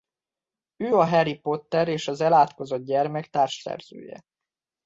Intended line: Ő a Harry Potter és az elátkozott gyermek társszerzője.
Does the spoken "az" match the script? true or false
true